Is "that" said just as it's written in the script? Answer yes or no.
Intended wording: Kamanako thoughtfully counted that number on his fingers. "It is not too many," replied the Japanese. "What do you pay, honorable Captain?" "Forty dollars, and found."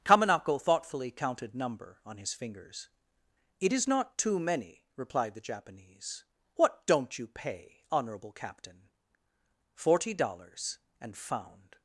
no